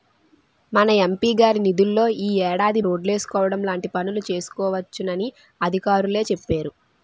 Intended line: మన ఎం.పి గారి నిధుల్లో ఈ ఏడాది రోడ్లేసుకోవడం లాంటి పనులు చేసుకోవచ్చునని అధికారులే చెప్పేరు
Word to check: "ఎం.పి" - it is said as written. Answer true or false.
true